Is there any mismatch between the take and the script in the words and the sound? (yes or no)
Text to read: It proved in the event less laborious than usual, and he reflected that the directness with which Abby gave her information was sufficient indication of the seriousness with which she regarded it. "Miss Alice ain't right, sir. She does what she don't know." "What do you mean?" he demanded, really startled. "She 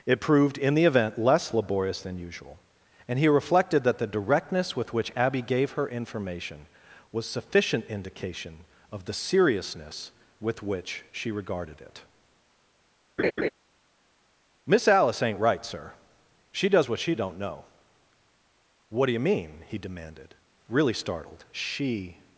yes